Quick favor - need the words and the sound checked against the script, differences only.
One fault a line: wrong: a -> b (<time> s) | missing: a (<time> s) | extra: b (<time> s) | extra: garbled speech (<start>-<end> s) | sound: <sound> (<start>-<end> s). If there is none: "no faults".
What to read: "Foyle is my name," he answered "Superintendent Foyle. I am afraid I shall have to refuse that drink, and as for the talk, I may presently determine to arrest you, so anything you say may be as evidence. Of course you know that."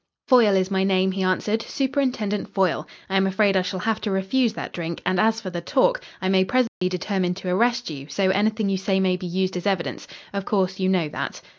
sound: dropout (6.7-6.8 s)
extra: used (9.3 s)